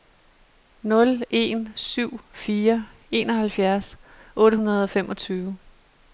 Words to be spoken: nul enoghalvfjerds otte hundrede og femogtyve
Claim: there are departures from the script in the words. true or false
true